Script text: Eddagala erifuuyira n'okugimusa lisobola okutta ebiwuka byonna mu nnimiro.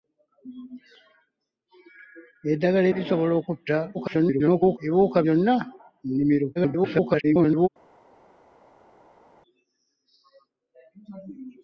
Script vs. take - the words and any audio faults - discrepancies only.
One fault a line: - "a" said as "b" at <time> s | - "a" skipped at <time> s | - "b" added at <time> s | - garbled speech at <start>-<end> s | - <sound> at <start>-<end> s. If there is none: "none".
- "erifuuyira n'okugimusa" skipped at 2.9 s
- garbled speech at 3.9-4.8 s
- garbled speech at 6.6-7.7 s